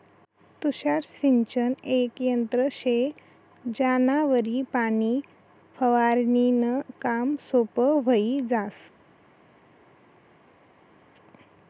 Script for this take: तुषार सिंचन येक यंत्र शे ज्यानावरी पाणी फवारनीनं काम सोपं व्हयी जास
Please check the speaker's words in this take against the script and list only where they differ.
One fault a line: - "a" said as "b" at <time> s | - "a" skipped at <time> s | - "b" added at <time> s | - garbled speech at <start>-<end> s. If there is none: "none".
none